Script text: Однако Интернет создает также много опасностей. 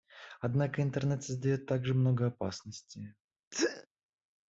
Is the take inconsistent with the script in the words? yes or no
no